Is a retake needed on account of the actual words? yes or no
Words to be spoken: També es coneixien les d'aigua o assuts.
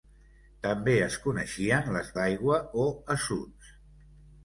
no